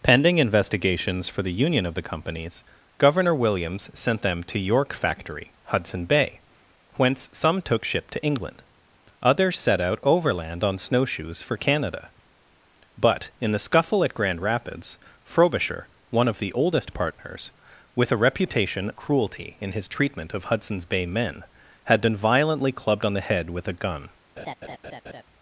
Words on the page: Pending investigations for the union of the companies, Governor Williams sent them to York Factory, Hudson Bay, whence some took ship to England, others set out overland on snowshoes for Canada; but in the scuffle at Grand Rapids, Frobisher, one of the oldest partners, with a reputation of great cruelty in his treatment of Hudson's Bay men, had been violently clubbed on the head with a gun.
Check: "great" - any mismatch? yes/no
yes